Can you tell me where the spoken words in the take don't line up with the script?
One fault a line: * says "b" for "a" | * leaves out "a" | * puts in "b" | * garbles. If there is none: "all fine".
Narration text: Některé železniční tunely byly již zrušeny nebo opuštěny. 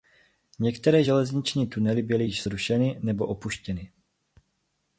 all fine